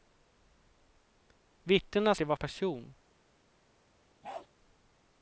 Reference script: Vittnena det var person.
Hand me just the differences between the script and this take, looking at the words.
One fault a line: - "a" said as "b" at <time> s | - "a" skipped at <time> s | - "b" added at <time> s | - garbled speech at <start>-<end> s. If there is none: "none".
none